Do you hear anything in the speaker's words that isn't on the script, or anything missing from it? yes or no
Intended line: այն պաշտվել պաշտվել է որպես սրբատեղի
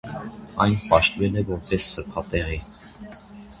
yes